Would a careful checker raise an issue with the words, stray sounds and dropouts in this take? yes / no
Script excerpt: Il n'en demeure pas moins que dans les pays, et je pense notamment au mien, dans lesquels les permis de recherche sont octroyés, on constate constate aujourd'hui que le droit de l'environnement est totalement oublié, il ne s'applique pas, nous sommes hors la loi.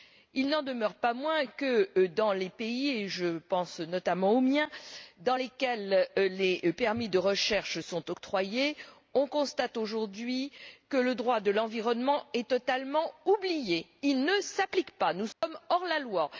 yes